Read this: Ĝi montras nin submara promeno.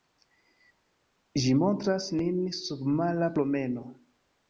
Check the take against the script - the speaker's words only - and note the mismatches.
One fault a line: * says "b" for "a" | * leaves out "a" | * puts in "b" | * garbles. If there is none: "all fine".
all fine